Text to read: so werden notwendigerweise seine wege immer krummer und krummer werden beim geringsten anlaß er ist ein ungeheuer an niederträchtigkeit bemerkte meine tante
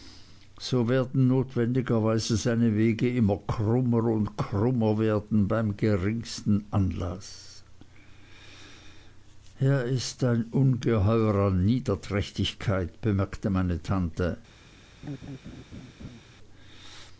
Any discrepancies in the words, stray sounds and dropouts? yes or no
yes